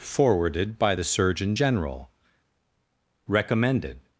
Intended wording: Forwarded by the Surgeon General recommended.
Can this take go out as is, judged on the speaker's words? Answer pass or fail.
pass